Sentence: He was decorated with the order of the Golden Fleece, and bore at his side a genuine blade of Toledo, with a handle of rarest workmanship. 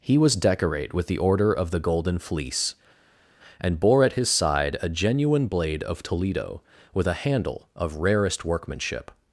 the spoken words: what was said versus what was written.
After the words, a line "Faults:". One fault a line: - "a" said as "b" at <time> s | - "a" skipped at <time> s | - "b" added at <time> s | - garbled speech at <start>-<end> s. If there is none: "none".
He was decorate with the order of the Golden Fleece, and bore at his side a genuine blade of Toledo, with a handle of rarest workmanship.
Faults:
- "decorated" said as "decorate" at 0.3 s